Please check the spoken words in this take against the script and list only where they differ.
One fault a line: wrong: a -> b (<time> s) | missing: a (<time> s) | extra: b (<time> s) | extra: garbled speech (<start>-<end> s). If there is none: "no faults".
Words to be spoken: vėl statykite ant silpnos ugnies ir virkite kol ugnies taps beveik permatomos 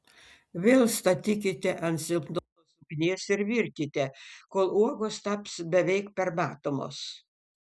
wrong: ugnies -> uogos (4.8 s)